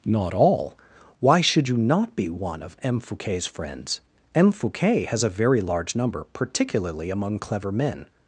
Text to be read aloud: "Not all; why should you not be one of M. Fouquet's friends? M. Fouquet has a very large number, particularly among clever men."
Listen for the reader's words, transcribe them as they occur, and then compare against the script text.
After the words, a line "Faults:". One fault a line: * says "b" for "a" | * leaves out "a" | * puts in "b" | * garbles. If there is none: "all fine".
"Not all; why should you not be one of M. Fouquet's friends? M. Fouquet has a very large number, particularly among clever men."
Faults:
all fine